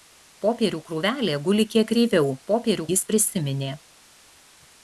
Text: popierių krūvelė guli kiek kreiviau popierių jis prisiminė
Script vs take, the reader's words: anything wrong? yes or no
no